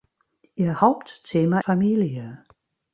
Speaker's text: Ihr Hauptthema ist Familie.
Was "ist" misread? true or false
true